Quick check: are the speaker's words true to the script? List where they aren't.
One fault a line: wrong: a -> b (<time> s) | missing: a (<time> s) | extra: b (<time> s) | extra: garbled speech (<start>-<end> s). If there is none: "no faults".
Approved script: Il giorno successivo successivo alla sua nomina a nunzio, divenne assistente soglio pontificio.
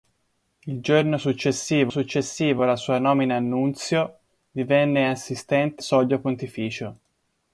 no faults